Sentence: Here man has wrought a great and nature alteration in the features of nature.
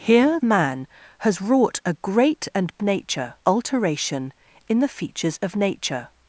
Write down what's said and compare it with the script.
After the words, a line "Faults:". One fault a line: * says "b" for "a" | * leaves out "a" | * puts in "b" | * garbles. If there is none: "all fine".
Here man has wrought a great and nature alteration in the features of nature.
Faults:
all fine